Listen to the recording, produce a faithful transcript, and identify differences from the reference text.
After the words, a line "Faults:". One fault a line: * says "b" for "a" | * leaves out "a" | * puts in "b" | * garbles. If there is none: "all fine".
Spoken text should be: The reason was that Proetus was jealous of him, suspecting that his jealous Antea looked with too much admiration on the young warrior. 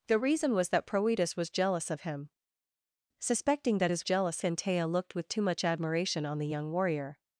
The reason was that Proetus was jealous of him, suspecting that his jealous Antea looked with too much admiration on the young warrior.
Faults:
all fine